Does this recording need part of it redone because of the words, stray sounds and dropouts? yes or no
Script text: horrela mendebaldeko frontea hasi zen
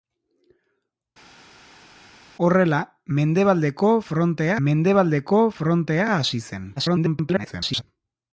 yes